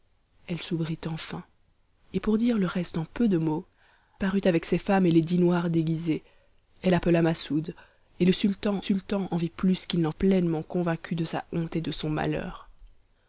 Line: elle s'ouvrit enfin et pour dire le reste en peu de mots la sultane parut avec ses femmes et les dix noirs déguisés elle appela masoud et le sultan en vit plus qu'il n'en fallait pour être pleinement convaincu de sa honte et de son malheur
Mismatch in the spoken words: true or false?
true